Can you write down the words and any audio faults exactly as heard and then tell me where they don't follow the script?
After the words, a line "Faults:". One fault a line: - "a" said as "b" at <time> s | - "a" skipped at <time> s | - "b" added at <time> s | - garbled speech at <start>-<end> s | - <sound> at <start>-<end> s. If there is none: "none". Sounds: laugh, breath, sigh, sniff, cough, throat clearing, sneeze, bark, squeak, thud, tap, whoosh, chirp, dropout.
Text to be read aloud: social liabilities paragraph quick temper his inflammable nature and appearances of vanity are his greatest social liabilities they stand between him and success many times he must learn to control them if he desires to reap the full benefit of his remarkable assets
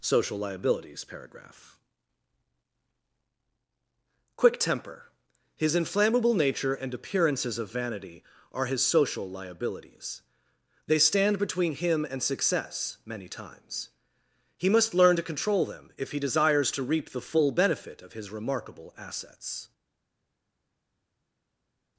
social liabilities paragraph quick temper his inflammable nature and appearances of vanity are his social liabilities they stand between him and success many times he must learn to control them if he desires to reap the full benefit of his remarkable assets
Faults:
- "greatest" skipped at 8.8 s